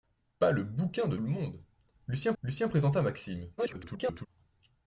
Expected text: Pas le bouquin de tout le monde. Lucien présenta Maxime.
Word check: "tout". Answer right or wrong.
wrong